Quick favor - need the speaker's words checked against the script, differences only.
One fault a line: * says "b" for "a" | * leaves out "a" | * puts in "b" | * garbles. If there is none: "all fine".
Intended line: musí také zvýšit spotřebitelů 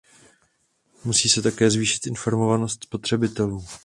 * puts in "se"
* puts in "informovanost"